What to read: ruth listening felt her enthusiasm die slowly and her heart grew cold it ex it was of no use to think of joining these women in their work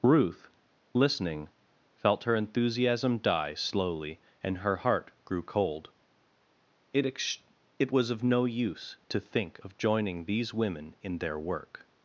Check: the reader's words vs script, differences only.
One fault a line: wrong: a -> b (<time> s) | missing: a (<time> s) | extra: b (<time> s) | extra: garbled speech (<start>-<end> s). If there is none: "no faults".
no faults